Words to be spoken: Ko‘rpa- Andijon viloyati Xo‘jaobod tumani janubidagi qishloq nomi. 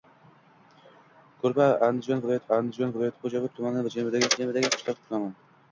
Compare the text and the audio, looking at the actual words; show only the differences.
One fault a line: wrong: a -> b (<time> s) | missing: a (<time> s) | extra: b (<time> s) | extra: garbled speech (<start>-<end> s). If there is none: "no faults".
extra: Andijon viloyati (2.6 s)
extra: janubidagi (4.4 s)